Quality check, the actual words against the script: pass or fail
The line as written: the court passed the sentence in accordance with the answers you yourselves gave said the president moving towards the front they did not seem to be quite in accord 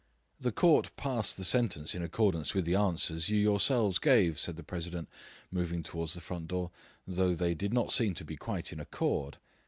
fail